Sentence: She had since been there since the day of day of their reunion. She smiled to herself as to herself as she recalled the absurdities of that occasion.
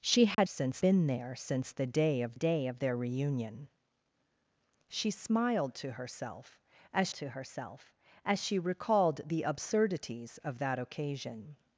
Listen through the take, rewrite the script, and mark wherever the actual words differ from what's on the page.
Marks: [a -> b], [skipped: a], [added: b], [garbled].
She had since been there since the day of day of their reunion. She smiled to herself as to herself as she recalled the absurdities of that occasion.